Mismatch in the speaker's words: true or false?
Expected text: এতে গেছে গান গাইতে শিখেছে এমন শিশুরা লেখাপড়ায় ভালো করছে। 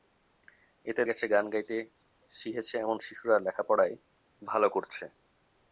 false